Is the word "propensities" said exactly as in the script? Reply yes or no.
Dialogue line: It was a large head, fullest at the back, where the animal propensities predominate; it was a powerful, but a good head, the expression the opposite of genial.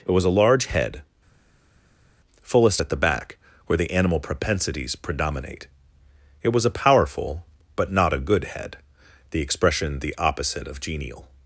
yes